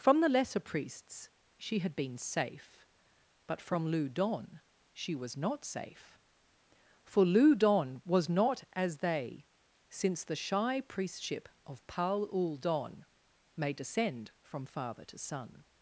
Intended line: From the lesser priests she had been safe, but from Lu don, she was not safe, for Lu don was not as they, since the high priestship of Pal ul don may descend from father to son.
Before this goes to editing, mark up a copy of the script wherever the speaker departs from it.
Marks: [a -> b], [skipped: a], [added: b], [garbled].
From the lesser priests she had been safe, but from Lu don, she was not safe, for Lu don was not as they, since the [high -> shy] priestship of Pal ul don may descend from father to son.